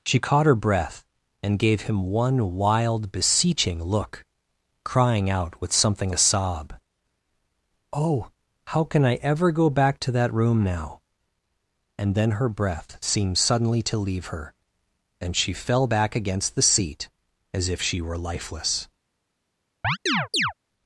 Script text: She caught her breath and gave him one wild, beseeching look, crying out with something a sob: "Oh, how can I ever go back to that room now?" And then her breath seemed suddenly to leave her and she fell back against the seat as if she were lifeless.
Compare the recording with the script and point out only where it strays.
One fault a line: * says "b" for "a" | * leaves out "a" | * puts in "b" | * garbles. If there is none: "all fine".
all fine